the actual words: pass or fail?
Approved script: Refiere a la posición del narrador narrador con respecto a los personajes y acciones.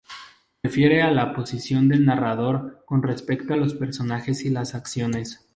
fail